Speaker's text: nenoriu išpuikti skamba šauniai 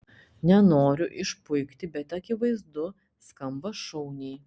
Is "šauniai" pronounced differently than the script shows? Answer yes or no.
no